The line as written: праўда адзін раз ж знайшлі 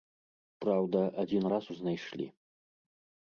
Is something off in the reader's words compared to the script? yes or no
no